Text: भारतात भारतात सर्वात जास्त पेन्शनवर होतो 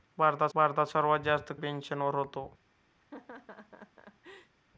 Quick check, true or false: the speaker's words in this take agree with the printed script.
true